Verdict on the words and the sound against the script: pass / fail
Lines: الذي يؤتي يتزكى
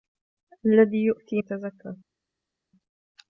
pass